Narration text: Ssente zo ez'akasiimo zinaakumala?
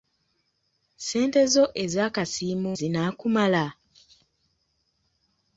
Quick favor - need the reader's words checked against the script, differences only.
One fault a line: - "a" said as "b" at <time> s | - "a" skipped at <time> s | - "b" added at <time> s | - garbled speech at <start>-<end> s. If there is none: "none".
none